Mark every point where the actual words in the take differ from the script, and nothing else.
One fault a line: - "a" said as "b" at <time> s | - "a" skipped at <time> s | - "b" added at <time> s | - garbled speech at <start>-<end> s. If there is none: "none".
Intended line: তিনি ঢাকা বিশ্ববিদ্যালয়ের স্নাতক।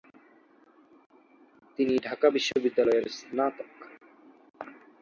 none